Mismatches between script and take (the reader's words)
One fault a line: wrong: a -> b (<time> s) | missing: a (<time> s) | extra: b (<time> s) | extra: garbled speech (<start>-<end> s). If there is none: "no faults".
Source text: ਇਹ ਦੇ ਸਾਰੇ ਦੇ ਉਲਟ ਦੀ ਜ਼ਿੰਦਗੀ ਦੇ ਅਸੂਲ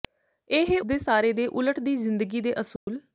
no faults